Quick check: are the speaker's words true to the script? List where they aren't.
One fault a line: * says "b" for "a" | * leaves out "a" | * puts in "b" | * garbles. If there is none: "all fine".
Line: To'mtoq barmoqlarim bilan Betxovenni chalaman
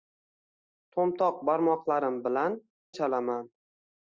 * leaves out "Betxovenni"